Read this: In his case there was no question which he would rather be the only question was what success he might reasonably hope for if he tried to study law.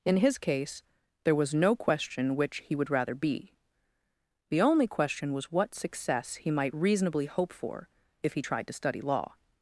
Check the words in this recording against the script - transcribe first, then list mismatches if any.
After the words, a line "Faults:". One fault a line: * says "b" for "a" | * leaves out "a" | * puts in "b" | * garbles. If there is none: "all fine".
In his case there was no question which he would rather be the only question was what success he might reasonably hope for if he tried to study law.
Faults:
all fine